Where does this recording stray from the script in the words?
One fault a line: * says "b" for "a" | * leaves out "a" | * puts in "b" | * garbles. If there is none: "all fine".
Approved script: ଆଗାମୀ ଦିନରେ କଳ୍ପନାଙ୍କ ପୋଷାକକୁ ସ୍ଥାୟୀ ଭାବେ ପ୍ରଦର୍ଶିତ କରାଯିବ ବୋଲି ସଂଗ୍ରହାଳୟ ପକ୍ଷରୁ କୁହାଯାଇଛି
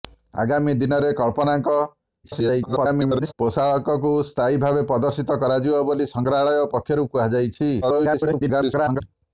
* garbles
* garbles